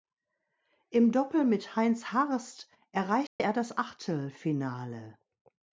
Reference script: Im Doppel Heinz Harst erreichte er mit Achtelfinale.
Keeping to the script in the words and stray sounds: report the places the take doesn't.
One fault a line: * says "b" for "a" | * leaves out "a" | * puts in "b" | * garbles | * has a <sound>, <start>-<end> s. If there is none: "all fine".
* puts in "mit"
* has a dropout, 3.3-3.4 s
* says "das" for "mit"